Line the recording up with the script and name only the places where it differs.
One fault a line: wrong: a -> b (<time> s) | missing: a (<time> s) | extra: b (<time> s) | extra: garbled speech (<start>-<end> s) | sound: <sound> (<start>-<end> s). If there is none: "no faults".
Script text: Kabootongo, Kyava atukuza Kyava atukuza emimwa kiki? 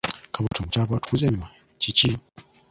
sound: dropout (0.5-0.5 s)
missing: Kyava atukuza (1.2 s)